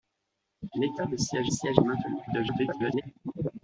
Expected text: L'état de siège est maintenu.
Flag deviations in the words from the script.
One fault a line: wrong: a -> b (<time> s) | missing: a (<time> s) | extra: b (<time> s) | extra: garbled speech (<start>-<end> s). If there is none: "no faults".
extra: siège (1.5 s)
extra: garbled speech (2.3-3.0 s)